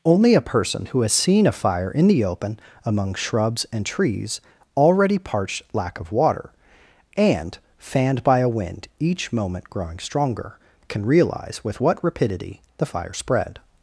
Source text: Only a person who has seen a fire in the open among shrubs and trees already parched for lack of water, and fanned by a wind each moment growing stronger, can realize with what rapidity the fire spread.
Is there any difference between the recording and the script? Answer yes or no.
yes